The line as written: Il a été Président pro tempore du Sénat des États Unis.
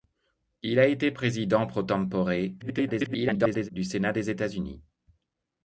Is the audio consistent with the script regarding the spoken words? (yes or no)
no